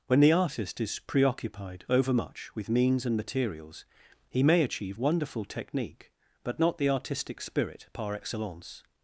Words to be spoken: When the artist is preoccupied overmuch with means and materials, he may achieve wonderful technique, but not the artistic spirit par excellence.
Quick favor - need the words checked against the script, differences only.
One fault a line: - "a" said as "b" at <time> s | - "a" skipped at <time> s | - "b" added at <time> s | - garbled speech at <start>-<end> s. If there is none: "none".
none